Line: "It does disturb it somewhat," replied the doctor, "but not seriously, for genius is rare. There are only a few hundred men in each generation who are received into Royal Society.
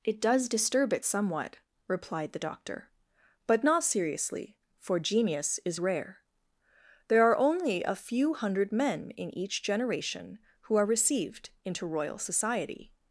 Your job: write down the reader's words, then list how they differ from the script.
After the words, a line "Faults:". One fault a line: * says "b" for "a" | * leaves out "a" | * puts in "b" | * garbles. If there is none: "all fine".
"It does disturb it somewhat," replied the doctor, "but not seriously, for genius is rare. There are only a few hundred men in each generation who are received into Royal Society.
Faults:
all fine